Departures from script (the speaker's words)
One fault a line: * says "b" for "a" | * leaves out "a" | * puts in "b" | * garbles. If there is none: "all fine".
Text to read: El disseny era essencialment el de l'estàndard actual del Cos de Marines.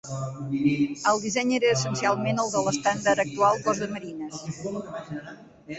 * leaves out "del"